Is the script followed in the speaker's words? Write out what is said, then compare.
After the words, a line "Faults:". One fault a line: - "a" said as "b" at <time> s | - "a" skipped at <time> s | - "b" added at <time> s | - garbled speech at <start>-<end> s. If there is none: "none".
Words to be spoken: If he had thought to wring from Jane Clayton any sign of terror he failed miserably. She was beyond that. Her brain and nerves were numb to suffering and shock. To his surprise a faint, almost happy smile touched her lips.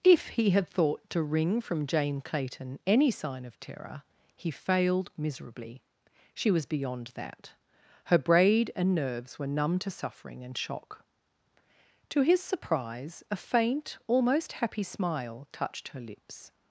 If he had thought to wring from Jane Clayton any sign of terror he failed miserably. She was beyond that. Her braid and nerves were numb to suffering and shock. To his surprise a faint, almost happy smile touched her lips.
Faults:
- "brain" said as "braid" at 8.2 s